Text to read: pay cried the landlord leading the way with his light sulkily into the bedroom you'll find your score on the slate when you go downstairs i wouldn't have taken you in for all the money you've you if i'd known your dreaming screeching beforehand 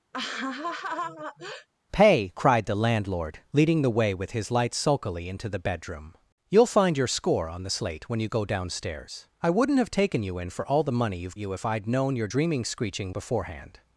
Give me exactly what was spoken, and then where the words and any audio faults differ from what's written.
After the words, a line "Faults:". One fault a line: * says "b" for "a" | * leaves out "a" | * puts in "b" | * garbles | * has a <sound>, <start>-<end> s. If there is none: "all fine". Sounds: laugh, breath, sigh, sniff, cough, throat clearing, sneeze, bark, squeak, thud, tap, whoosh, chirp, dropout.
pay cried the landlord leading the way with his light sulkily into the bedroom you'll find your score on the slate when you go downstairs i wouldn't have taken you in for all the money you've you if i'd known your dreaming screeching beforehand
Faults:
* has a laugh, 0.1-1.7 s